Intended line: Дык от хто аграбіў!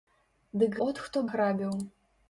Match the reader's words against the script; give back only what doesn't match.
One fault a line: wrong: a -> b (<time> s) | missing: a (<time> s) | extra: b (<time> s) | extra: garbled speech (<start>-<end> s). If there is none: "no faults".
no faults